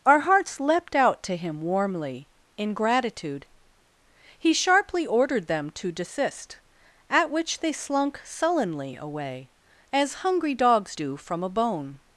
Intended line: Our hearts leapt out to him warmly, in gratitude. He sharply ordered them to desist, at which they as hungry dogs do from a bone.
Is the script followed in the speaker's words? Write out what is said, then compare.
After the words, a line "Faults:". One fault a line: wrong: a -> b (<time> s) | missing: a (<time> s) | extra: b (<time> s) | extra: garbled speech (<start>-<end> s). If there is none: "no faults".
Our hearts leapt out to him warmly, in gratitude. He sharply ordered them to desist, at which they slunk sullenly away, as hungry dogs do from a bone.
Faults:
extra: slunk sullenly away (7.7 s)